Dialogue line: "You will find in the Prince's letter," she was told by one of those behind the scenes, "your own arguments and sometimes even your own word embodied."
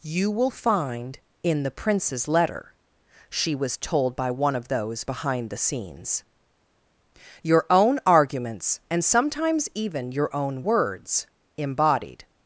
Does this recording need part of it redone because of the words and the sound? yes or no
yes